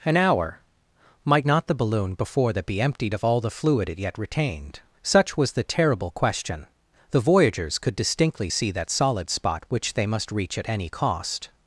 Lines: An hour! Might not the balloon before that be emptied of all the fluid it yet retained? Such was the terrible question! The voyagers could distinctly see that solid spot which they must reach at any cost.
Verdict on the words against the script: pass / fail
pass